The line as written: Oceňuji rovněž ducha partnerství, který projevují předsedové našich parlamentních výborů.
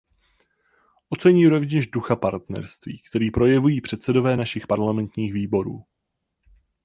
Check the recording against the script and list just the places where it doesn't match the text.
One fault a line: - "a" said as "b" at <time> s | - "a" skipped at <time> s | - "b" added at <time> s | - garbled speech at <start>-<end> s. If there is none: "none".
none